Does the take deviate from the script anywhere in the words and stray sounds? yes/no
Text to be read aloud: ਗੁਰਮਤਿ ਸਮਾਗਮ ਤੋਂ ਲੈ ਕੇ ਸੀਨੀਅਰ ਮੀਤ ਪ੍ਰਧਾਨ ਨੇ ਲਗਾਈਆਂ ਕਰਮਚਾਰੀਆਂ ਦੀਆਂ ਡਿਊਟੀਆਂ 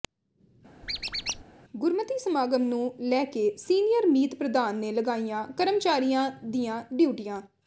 yes